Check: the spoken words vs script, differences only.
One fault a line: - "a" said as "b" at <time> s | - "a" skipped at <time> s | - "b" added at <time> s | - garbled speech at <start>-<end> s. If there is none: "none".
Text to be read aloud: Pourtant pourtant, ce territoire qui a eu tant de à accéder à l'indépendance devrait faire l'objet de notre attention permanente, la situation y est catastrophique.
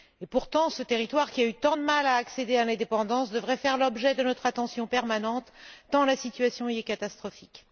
- "pourtant" skipped at 0.7 s
- "mal" added at 1.8 s
- "tant" added at 5.9 s